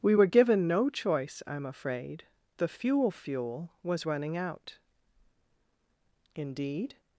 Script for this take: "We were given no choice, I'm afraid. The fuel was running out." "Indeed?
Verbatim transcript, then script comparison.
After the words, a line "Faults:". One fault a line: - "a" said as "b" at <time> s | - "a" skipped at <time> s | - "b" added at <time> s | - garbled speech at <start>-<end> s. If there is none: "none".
"We were given no choice, I'm afraid. The fuel fuel was running out." "Indeed?
Faults:
- "fuel" added at 3.1 s